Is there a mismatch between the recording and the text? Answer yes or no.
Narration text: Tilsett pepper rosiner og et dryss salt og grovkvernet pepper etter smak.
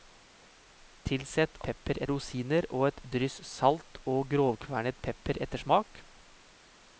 no